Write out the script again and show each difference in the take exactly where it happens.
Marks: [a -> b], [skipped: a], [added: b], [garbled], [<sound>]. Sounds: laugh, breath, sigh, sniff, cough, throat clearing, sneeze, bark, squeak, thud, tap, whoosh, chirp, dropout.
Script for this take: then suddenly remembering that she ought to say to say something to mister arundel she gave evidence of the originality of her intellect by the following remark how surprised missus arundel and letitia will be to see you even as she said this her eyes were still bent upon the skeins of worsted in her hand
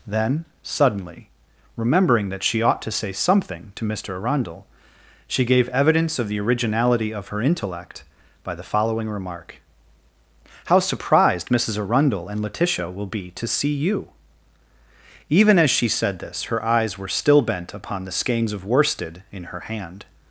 then suddenly remembering that she ought to say [skipped: to say] something to mister arundel she gave evidence of the originality of her intellect by the following remark how surprised missus arundel and letitia will be to see you even as she said this her eyes were still bent upon the skeins of worsted in her hand